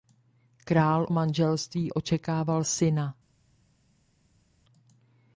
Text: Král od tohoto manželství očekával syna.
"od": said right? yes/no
no